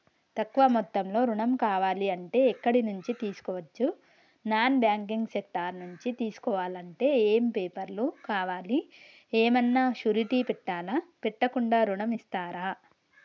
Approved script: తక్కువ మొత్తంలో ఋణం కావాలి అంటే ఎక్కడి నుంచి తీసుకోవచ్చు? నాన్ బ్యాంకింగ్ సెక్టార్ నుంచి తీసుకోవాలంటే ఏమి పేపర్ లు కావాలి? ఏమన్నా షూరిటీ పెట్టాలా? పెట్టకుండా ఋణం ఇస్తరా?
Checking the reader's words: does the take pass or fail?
pass